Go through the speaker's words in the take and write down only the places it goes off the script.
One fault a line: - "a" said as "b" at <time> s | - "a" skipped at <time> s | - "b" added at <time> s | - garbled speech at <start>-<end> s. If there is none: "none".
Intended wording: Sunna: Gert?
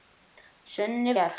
none